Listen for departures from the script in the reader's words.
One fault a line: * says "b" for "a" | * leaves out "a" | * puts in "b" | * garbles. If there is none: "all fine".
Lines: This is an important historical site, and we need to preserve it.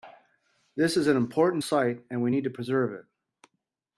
* leaves out "historical"